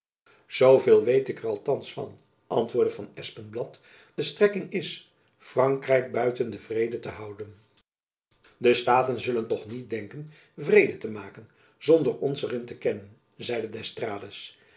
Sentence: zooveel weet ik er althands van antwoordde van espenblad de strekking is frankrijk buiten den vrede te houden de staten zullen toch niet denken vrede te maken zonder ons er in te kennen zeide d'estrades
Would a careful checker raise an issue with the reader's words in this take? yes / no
no